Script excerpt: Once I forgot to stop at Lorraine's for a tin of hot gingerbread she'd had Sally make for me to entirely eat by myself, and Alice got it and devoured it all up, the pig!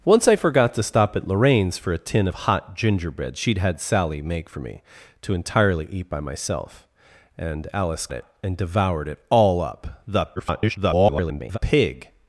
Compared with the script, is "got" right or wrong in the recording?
wrong